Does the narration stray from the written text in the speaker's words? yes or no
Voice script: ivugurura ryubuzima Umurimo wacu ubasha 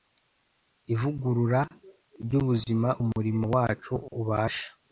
no